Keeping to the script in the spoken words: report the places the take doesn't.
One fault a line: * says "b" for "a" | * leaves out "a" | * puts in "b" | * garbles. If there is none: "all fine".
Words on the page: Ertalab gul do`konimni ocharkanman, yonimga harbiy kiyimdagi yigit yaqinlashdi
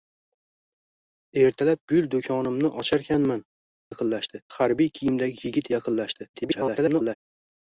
* says "yaqinlashdi" for "yonimga"
* garbles